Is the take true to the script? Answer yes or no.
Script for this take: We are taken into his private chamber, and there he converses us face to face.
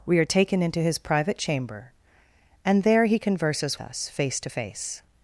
yes